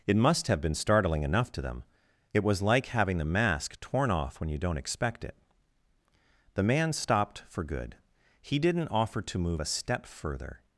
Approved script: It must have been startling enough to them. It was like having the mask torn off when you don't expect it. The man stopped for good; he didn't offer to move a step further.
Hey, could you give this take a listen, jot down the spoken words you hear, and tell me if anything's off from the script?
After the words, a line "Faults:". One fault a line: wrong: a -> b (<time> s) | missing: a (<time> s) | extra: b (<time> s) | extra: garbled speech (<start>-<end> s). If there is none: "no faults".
It must have been startling enough to them. It was like having the mask torn off when you don't expect it. The man stopped for good; he didn't offer to move a step further.
Faults:
no faults